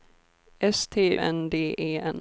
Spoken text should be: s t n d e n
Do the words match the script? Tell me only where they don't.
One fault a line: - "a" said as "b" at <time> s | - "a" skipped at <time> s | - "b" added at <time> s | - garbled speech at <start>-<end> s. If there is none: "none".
none